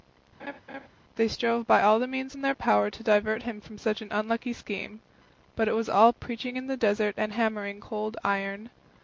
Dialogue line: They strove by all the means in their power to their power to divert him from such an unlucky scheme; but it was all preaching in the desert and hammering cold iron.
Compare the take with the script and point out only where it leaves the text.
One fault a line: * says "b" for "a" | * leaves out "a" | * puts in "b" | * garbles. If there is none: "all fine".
* leaves out "their power to"